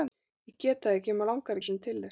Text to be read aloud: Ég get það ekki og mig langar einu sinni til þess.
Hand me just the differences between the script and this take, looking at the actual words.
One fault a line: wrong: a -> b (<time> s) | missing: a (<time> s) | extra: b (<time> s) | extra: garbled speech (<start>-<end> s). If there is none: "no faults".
no faults